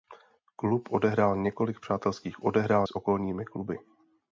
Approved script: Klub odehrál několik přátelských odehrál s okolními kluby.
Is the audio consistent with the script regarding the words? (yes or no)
yes